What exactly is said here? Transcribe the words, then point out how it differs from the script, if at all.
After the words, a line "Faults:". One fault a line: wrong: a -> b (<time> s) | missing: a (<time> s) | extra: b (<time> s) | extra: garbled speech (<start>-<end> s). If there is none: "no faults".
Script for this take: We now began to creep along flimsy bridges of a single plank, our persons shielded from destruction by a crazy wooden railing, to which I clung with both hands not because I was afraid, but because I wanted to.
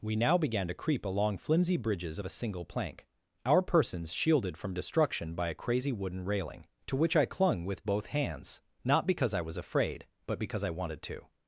We now began to creep along flimsy bridges of a single plank, our persons shielded from destruction by a crazy wooden railing, to which I clung with both hands not because I was afraid, but because I wanted to.
Faults:
no faults